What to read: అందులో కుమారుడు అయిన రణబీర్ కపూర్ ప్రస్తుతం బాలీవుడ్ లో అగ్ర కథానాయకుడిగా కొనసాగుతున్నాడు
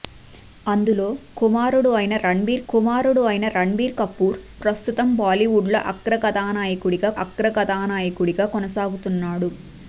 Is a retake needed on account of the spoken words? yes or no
yes